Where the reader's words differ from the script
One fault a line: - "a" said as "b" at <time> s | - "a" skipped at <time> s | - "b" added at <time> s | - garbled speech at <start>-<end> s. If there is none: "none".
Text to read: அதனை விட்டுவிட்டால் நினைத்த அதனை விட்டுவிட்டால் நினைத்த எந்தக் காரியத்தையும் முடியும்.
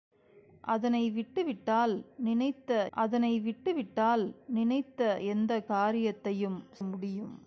none